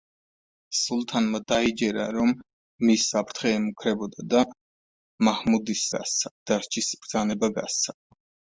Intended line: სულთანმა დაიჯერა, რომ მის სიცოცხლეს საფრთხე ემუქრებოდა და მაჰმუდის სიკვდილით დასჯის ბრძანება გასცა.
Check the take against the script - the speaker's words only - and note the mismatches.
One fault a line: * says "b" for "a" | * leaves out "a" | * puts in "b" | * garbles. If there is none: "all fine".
* leaves out "სიცოცხლეს"
* says "გასცა" for "სიკვდილით"